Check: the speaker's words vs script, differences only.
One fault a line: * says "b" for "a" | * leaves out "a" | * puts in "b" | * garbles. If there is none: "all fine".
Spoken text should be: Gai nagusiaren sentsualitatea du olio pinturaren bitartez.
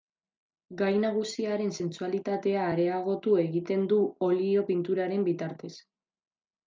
* puts in "areagotu egiten"